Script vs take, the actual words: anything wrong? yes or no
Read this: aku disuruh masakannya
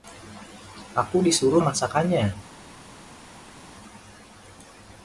no